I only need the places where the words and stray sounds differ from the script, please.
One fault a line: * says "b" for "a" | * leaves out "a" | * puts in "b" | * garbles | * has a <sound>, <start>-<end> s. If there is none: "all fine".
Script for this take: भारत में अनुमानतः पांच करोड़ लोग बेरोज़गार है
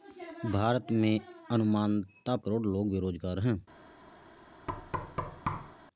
* leaves out "पांच"
* has a thud, 4.7-5.8 s